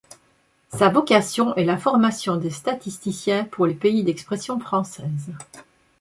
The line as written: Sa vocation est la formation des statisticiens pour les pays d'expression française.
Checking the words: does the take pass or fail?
pass